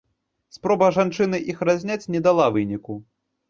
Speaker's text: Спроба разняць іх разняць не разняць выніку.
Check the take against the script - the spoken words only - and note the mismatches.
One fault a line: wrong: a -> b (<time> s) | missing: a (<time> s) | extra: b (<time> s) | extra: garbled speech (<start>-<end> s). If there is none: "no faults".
wrong: разняць -> жанчыны (0.9 s)
wrong: разняць -> дала (2.3 s)